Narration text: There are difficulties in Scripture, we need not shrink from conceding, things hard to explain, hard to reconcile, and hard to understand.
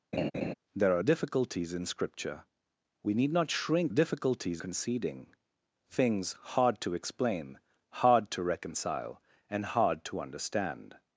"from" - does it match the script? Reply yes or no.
no